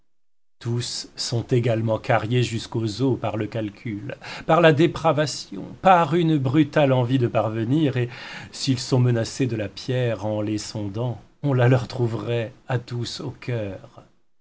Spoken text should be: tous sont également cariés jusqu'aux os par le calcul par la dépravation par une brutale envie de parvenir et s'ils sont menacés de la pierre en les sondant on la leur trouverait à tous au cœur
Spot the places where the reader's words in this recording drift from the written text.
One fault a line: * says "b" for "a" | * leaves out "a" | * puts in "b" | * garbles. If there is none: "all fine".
all fine